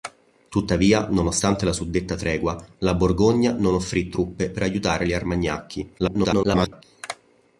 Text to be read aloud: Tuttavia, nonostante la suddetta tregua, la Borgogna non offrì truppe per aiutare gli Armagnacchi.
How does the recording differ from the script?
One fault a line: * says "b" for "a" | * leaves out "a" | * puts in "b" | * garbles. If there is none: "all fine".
* garbles